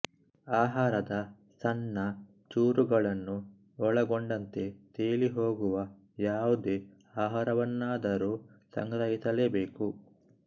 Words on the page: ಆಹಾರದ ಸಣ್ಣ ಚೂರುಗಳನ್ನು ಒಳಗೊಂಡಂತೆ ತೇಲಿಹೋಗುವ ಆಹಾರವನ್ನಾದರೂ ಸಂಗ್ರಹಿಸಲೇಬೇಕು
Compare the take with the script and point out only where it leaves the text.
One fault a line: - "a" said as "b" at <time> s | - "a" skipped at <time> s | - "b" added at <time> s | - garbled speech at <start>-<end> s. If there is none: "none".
- "ಯಾವುದೇ" added at 6.2 s